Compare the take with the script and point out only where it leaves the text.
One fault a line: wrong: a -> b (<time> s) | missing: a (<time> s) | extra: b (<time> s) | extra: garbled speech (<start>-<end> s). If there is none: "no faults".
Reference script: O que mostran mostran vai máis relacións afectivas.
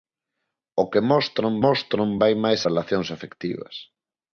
no faults